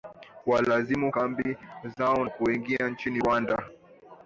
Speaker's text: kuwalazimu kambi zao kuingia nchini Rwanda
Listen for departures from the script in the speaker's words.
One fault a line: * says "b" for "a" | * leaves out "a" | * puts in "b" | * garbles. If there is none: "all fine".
all fine